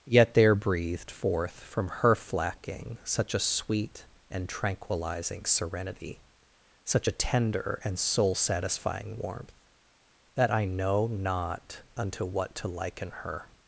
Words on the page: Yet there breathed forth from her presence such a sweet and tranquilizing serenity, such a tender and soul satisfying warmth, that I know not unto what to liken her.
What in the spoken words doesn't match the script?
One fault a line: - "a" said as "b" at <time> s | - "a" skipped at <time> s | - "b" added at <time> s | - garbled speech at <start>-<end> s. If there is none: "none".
- "presence" said as "flacking" at 2.1 s